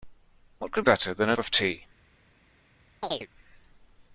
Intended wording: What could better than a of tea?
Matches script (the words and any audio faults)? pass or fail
fail